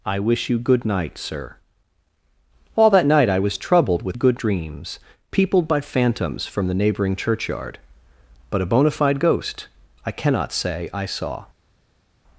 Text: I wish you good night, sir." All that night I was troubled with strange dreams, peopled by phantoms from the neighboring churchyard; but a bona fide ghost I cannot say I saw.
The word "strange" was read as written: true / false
false